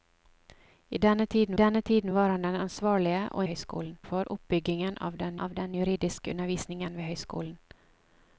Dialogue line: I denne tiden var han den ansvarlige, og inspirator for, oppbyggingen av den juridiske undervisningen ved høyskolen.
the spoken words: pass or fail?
fail